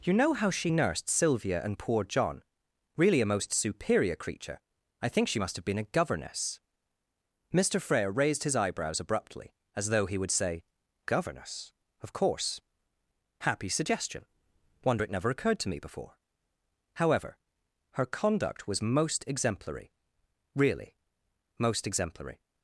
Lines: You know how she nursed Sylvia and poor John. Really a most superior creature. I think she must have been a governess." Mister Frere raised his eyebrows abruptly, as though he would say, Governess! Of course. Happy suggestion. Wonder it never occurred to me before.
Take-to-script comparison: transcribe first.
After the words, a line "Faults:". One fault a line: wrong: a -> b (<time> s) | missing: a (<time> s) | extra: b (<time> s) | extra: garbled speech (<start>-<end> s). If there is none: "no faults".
You know how she nursed Sylvia and poor John. Really a most superior creature. I think she must have been a governess." Mister Frere raised his eyebrows abruptly, as though he would say, Governess! Of course. Happy suggestion. Wonder it never occurred to me before. "However, her conduct was most exemplary really most exemplary
Faults:
extra: However her conduct was most exemplary really most exemplary (16.9 s)